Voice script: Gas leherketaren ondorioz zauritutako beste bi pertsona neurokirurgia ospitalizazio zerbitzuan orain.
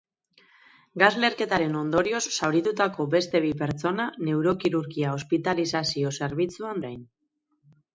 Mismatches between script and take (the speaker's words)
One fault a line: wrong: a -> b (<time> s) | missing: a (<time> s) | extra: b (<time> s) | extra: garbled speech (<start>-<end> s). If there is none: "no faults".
no faults